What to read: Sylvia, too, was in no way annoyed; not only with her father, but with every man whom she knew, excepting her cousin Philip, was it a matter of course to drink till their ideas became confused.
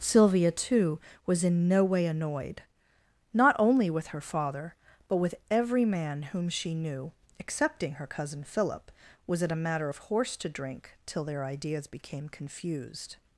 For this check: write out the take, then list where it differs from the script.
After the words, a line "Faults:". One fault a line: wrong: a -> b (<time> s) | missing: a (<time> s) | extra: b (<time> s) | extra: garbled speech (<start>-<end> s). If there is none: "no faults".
Sylvia, too, was in no way annoyed; not only with her father, but with every man whom she knew, excepting her cousin Philip, was it a matter of horse to drink till their ideas became confused.
Faults:
wrong: course -> horse (10.0 s)